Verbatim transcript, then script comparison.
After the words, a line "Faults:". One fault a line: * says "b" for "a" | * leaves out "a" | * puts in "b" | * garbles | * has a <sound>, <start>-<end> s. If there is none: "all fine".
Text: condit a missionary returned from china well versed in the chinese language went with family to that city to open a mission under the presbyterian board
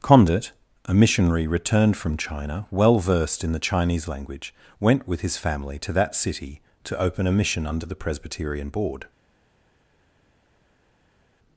condit a missionary returned from china well versed in the chinese language went with his family to that city to open a mission under the presbyterian board
Faults:
* puts in "his"